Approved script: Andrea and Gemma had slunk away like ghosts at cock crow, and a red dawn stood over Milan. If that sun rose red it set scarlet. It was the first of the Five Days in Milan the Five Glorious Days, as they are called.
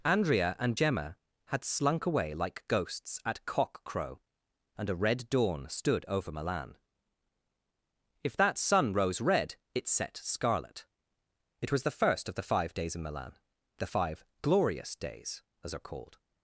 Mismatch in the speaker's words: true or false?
true